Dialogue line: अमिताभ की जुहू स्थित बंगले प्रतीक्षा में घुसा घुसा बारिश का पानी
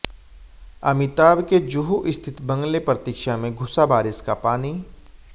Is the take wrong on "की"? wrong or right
wrong